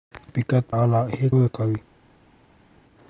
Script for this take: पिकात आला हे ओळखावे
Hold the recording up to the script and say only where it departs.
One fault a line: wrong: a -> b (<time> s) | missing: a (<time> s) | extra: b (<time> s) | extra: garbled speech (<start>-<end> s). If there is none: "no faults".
no faults